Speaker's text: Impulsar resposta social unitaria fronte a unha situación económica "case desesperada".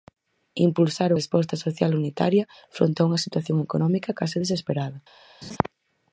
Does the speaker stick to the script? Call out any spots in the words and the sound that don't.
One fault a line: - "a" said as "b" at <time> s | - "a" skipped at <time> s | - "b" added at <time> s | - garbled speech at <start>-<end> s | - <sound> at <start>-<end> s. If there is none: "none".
- laugh at 5.4-5.6 s